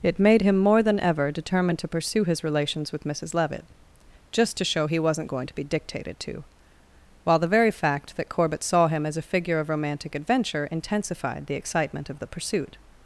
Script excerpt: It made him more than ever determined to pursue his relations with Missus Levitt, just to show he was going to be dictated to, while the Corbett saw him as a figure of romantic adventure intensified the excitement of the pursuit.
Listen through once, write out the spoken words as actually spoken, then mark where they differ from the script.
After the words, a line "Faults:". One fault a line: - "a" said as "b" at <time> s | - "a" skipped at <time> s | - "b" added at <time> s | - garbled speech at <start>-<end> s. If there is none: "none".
It made him more than ever determined to pursue his relations with Missus Levitt, just to show he wasn't going to be dictated to, while the very fact that Corbett saw him as a figure of romantic adventure intensified the excitement of the pursuit.
Faults:
- "was" said as "wasn't" at 5.0 s
- "very fact that" added at 7.5 s